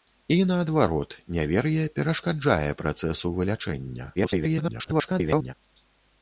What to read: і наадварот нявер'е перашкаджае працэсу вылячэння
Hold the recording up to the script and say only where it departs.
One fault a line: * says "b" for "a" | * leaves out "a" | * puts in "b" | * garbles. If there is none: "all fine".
* garbles